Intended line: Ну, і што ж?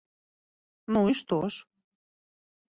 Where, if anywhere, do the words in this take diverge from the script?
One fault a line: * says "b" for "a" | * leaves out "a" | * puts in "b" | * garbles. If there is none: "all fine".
all fine